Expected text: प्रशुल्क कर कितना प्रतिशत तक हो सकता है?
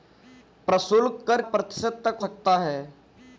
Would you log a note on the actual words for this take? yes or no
yes